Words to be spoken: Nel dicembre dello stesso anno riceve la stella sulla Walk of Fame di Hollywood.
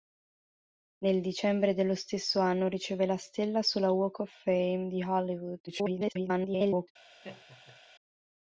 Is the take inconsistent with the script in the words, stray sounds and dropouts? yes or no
yes